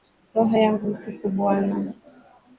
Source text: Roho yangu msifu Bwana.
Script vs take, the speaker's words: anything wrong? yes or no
no